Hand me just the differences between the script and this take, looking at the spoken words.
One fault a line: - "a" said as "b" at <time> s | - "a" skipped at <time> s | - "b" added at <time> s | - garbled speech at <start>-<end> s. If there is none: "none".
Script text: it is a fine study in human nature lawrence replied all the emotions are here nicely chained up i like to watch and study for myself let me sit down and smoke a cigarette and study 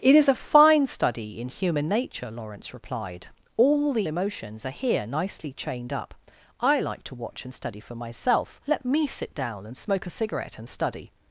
none